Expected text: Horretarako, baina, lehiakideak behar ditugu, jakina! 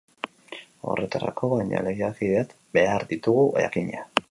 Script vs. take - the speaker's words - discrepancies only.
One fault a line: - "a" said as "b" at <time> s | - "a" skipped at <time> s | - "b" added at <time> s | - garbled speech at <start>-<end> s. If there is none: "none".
none